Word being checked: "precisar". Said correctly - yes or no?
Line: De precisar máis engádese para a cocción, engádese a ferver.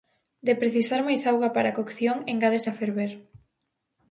yes